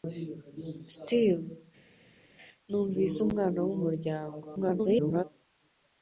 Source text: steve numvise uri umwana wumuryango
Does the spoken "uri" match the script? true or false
false